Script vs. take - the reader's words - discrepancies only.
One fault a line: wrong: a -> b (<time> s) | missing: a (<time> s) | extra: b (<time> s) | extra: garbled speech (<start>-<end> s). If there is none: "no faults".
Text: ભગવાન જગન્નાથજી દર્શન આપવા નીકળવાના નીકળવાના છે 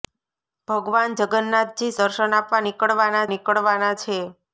no faults